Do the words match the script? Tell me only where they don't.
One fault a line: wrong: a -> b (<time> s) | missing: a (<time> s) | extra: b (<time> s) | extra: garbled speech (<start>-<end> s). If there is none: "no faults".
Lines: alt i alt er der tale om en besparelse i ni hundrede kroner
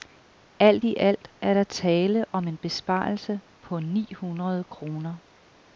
wrong: i -> på (3.6 s)